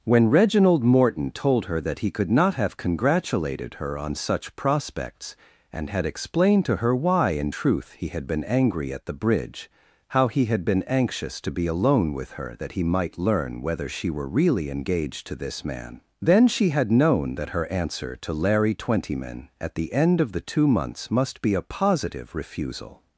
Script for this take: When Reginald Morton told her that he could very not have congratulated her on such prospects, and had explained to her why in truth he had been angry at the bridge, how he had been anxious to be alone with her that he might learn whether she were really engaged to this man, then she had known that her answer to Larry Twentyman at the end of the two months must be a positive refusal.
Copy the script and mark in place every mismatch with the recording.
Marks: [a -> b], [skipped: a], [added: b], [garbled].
When Reginald Morton told her that he could [skipped: very] not have congratulated her on such prospects, and had explained to her why in truth he had been angry at the bridge, how he had been anxious to be alone with her that he might learn whether she were really engaged to this man, then she had known that her answer to Larry Twentyman at the end of the two months must be a positive refusal.